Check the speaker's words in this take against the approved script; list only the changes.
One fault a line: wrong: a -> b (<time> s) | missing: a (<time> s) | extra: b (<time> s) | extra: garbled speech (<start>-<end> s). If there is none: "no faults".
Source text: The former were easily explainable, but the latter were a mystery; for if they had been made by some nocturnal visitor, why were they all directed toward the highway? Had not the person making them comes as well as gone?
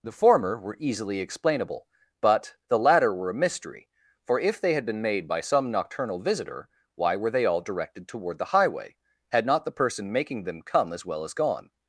wrong: comes -> come (10.6 s)